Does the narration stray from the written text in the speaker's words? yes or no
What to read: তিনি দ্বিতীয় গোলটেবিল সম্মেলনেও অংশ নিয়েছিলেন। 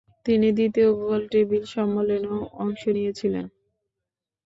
no